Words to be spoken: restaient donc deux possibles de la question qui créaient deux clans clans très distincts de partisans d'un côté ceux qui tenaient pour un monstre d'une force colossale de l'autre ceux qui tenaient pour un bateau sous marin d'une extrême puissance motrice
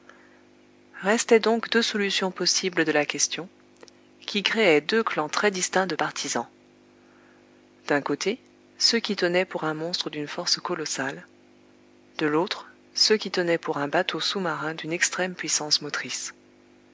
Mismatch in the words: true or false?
true